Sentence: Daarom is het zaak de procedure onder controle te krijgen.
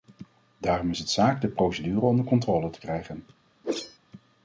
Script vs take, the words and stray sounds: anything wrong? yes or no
yes